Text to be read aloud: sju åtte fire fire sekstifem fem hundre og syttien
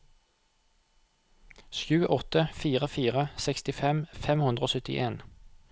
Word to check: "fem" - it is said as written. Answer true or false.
true